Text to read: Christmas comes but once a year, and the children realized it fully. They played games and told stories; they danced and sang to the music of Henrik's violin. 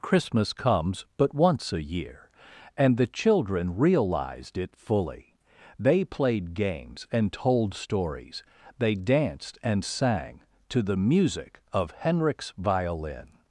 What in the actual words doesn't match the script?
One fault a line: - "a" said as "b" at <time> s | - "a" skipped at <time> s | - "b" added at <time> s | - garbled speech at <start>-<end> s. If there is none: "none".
none